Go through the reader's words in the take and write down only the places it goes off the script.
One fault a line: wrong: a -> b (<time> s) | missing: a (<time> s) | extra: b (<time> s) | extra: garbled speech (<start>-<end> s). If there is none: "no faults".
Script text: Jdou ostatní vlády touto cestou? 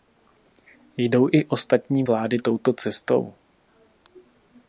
extra: i (1.3 s)